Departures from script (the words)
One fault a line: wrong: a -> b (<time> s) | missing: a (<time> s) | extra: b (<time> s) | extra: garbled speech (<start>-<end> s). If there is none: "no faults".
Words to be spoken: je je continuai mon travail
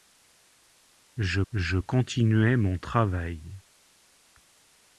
no faults